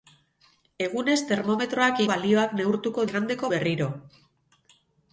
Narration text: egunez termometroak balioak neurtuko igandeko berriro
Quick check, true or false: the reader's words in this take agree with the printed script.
true